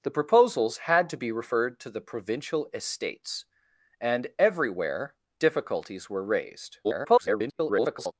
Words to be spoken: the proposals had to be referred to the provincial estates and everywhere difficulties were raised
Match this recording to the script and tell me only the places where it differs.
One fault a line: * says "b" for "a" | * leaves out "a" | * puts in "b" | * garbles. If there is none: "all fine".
* garbles